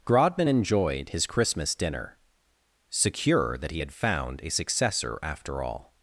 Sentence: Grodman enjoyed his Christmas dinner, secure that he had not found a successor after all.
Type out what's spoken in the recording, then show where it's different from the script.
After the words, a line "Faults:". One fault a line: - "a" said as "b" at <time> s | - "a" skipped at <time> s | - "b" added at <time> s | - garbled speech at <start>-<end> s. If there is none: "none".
Grodman enjoyed his Christmas dinner, secure that he had found a successor after all.
Faults:
- "not" skipped at 3.9 s